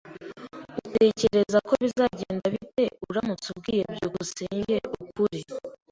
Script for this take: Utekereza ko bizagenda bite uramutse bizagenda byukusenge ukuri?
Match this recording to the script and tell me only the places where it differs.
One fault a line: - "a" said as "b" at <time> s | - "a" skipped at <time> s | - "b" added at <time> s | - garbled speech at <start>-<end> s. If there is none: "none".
- "bizagenda" said as "ubwiye" at 3.5 s